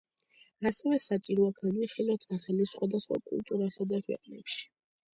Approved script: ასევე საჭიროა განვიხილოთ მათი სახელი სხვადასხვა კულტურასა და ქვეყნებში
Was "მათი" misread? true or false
true